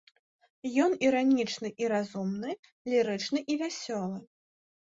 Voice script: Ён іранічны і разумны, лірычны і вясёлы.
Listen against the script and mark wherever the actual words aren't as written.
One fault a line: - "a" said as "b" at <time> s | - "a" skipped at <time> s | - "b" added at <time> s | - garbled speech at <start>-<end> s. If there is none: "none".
none